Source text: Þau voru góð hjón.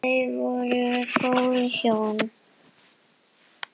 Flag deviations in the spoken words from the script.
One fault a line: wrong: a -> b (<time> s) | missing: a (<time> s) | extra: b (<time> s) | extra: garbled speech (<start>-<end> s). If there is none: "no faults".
no faults